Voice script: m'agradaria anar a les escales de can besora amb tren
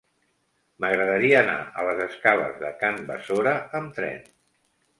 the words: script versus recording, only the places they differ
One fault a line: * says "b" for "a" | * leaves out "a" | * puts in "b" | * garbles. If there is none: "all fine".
all fine